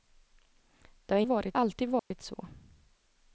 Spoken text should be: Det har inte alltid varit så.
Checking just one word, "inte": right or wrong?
wrong